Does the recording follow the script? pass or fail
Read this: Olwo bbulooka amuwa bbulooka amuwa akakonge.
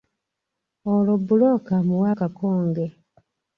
fail